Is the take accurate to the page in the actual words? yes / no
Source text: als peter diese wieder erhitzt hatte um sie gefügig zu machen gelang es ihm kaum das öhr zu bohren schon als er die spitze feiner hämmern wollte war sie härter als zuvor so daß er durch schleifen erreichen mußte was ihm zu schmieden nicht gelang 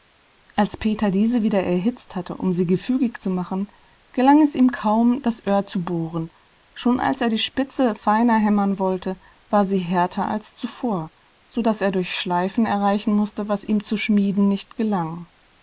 yes